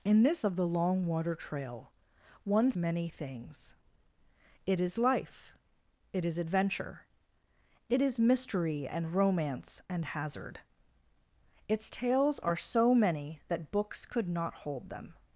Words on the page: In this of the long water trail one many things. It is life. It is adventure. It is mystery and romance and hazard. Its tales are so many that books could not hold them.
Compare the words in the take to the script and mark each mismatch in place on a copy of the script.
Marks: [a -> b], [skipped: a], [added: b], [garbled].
In this of the long water trail one many things. It is life. It is adventure. It is mystery and romance and hazard. Its tales are so many that books could not hold them.